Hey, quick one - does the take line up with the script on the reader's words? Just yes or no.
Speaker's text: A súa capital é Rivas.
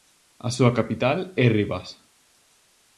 yes